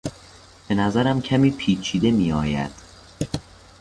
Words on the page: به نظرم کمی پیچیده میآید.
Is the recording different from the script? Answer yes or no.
no